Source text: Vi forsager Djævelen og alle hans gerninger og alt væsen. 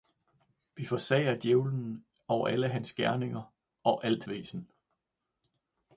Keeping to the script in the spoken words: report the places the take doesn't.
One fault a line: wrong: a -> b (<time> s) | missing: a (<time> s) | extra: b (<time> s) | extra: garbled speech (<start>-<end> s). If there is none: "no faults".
no faults